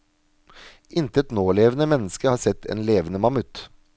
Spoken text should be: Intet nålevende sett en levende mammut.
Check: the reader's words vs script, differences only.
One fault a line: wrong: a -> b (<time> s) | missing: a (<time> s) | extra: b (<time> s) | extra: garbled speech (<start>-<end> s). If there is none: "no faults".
extra: menneske har (1.9 s)